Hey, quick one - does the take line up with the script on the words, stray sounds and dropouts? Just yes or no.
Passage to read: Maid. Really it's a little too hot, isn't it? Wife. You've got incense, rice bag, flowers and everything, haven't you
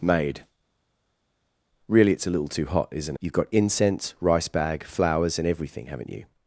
no